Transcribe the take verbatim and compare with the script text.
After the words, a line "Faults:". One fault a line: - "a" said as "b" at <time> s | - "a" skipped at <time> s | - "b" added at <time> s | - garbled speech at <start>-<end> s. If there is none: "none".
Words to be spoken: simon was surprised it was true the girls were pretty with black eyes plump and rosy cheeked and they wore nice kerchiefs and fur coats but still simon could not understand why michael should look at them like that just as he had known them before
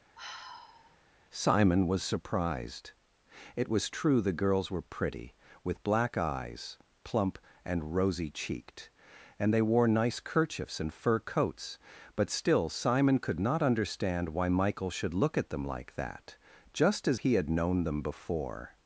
simon was surprised it was true the girls were pretty with black eyes plump and rosy cheeked and they wore nice kerchiefs and fur coats but still simon could not understand why michael should look at them like that just as he had known them before
Faults:
none